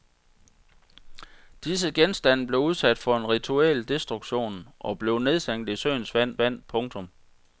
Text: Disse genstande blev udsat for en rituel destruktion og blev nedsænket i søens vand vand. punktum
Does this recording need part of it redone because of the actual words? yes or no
no